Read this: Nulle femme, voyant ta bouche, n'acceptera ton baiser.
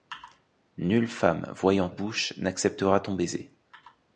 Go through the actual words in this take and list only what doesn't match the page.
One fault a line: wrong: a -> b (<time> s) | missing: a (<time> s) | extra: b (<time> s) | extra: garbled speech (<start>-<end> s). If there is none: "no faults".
missing: ta (1.9 s)